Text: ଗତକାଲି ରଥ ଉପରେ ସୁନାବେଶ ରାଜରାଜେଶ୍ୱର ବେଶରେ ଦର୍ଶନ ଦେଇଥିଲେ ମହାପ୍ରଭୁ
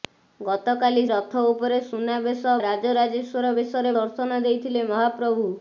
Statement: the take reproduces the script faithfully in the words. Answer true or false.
true